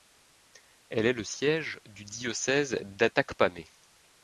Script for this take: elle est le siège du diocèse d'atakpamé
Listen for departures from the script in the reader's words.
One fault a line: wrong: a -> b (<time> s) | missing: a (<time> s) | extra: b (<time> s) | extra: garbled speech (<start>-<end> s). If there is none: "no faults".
no faults